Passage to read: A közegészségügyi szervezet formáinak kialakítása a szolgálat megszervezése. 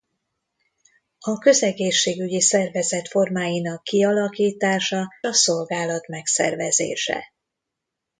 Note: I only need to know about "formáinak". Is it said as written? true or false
true